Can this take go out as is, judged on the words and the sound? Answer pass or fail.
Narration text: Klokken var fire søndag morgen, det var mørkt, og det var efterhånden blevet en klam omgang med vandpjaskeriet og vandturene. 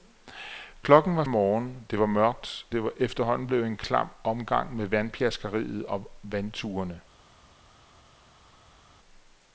fail